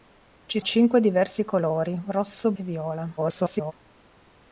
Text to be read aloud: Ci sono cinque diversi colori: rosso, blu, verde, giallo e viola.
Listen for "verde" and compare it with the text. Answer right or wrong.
wrong